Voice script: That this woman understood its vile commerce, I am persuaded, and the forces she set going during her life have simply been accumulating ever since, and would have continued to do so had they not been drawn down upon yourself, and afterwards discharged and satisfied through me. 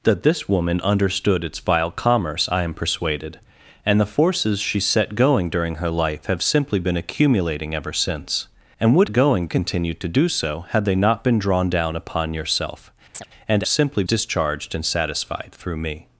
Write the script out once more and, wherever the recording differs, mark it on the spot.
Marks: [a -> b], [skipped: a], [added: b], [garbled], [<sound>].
That this woman understood its vile commerce, I am persuaded, and the forces she set going during her life have simply been accumulating ever since, and would [have -> going] continued to do so had they not been drawn down upon yourself, [chirp] and [afterwards -> simply] discharged and satisfied through me.